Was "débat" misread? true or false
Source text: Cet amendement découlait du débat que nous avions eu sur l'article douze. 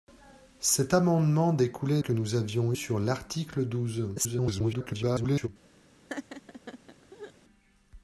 true